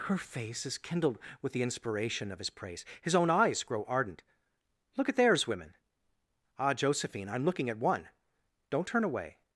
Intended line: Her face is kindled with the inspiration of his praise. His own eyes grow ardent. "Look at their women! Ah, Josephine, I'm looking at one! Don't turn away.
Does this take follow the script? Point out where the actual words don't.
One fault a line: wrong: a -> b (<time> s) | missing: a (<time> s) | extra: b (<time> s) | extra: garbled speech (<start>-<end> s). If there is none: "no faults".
wrong: their -> theirs (5.2 s)